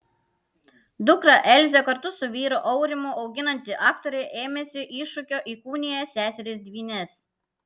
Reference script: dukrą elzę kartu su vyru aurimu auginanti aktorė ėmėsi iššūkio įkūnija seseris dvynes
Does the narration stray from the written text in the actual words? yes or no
no